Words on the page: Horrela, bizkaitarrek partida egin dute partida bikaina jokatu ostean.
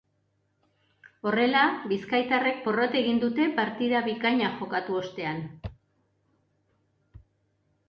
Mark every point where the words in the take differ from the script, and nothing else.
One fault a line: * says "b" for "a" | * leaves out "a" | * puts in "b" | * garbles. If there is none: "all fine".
* says "porrot" for "partida"